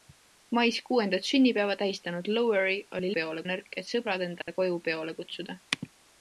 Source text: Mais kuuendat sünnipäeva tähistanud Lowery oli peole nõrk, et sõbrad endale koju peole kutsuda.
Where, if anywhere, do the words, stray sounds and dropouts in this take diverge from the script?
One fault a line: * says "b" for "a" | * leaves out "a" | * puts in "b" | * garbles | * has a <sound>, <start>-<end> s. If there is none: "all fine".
* has a dropout, 4.4-4.5 s